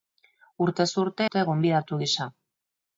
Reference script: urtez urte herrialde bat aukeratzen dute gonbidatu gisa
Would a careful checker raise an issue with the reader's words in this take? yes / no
yes